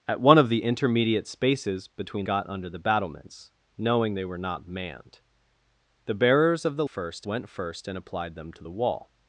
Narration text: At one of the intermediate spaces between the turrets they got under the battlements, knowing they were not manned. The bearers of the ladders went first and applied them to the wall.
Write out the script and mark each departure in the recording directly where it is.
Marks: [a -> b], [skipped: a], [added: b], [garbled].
At one of the intermediate spaces between [skipped: the turrets they] got under the battlements, knowing they were not manned. The bearers of the [ladders -> first] went first and applied them to the wall.